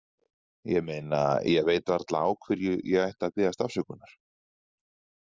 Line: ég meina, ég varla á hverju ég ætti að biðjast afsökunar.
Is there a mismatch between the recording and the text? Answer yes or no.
yes